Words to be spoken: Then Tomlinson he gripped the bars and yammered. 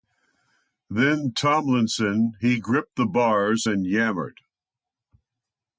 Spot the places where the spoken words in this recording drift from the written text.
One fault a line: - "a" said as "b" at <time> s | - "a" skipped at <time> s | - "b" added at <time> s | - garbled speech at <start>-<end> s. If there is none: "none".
none